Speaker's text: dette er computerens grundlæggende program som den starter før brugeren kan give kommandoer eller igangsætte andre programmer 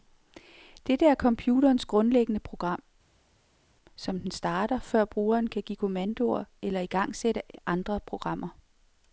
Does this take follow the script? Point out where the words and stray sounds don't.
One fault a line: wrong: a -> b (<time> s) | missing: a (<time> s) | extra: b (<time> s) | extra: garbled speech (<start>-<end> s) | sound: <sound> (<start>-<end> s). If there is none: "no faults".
no faults